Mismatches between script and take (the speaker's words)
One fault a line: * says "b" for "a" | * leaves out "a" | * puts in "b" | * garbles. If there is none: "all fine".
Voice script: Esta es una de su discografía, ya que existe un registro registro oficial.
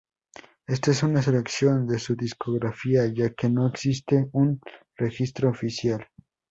* puts in "selección"
* puts in "no"
* leaves out "registro"